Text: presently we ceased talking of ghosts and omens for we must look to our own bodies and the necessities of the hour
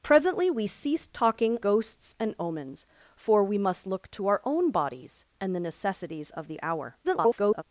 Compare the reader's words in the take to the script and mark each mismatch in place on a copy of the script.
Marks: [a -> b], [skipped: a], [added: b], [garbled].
presently we ceased talking [skipped: of] ghosts and omens for we must look to our own bodies and the necessities of the hour [garbled]